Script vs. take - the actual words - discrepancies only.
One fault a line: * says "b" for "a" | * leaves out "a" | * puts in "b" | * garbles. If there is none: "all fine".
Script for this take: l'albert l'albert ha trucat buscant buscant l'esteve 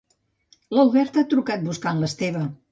* leaves out "l'albert"
* leaves out "buscant"